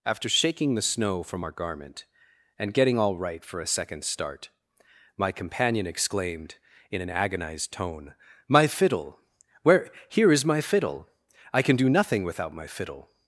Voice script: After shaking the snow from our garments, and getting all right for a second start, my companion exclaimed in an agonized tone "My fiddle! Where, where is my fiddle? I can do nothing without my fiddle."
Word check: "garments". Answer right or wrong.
wrong